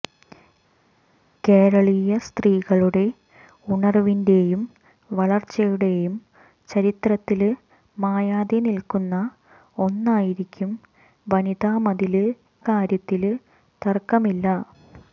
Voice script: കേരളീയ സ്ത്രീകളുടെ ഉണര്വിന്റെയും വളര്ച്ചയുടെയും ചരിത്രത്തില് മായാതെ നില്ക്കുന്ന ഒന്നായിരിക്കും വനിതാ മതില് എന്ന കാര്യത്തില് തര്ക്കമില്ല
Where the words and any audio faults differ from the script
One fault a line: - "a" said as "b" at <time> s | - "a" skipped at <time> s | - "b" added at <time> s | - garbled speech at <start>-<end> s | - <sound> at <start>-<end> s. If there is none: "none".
- "എന്ന" skipped at 12.3 s